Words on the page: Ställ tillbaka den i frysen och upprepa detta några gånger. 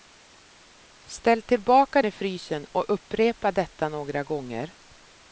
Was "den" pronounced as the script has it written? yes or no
no